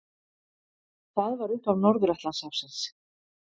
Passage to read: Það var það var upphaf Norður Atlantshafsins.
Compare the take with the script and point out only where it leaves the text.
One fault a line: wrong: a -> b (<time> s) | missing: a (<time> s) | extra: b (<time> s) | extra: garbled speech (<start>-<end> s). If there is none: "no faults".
missing: það var (1.6 s)